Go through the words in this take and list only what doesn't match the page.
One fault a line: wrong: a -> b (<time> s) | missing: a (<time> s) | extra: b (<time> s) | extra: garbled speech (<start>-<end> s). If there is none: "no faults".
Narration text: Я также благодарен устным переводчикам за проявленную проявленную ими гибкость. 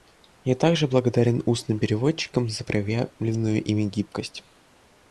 missing: проявленную (3.6 s)